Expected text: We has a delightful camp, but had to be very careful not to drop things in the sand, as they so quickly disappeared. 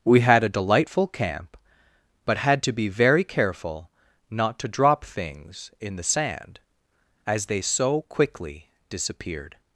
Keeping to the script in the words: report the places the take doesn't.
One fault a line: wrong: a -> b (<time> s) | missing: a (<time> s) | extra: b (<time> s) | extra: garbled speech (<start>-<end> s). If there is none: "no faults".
wrong: has -> had (0.2 s)